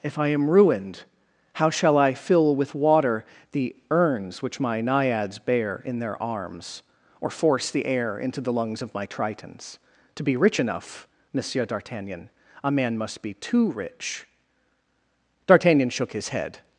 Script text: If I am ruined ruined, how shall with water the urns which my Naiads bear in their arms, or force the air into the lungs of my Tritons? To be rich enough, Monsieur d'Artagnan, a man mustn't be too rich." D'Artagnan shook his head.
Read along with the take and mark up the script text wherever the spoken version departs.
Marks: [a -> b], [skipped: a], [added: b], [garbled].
If I am ruined [skipped: ruined,] how shall [added: I fill] with water the urns which my Naiads bear in their arms, or force the air into the lungs of my Tritons? To be rich enough, Monsieur d'Artagnan, a man [mustn't -> must] be too rich." D'Artagnan shook his head.